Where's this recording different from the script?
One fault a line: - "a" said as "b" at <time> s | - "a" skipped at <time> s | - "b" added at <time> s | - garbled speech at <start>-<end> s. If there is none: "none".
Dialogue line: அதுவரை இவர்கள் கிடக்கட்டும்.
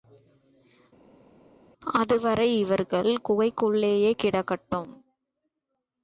- "குகைக்குள்ளேயே" added at 3.3 s